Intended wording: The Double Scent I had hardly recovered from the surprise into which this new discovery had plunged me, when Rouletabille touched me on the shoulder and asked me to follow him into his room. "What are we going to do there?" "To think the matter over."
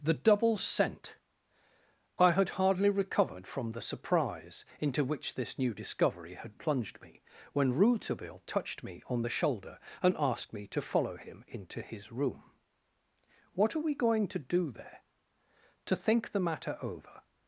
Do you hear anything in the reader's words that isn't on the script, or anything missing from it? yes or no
no